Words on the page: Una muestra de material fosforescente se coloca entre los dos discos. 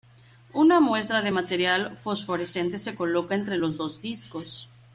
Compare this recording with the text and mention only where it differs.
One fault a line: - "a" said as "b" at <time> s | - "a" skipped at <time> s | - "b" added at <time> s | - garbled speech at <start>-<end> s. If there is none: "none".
none